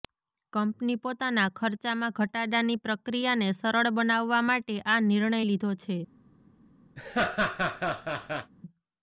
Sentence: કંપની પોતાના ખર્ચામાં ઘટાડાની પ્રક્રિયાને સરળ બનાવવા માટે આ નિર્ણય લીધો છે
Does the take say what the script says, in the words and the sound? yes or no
no